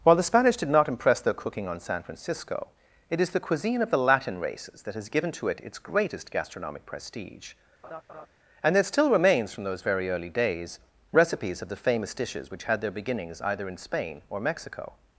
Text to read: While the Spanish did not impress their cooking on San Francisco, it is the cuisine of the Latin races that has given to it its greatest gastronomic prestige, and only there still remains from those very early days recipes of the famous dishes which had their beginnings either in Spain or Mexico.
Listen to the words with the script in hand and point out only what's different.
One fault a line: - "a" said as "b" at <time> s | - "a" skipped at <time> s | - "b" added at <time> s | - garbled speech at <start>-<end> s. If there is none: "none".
- "only" skipped at 8.7 s